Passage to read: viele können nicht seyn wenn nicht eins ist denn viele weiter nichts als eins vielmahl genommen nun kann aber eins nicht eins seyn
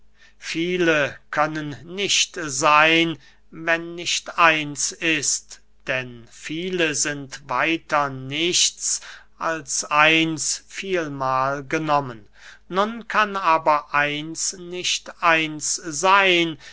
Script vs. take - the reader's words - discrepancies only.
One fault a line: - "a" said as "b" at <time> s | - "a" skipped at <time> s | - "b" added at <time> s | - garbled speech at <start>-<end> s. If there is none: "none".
- "sind" added at 6.9 s